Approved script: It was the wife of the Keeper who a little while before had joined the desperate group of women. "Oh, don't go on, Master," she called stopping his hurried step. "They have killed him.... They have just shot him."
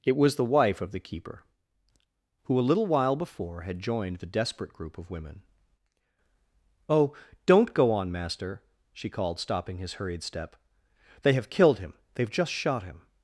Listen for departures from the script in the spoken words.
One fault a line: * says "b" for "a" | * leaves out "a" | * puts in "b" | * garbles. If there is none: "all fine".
all fine